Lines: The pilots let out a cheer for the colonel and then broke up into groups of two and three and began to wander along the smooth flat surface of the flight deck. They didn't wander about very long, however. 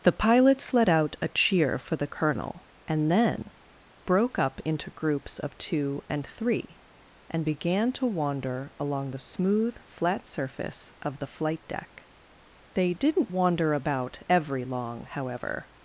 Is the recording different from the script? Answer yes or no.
yes